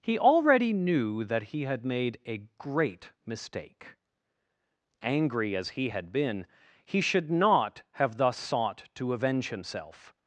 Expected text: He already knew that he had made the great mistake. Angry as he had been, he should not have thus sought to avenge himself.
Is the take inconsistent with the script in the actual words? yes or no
yes